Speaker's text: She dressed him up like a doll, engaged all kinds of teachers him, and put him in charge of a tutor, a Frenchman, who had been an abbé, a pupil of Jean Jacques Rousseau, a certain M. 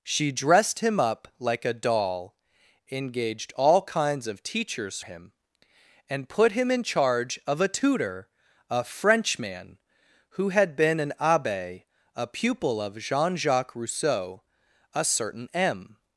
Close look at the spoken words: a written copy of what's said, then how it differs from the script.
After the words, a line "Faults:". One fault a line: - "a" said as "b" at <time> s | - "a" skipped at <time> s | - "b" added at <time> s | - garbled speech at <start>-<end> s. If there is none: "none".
She dressed him up like a doll, engaged all kinds of teachers him, and put him in charge of a tutor, a Frenchman, who had been an abbé, a pupil of Jean Jacques Rousseau, a certain M.
Faults:
none